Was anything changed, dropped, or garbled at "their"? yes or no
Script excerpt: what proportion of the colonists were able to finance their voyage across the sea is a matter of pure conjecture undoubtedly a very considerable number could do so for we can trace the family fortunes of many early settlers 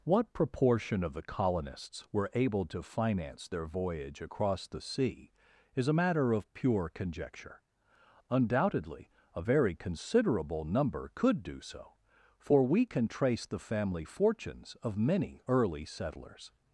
no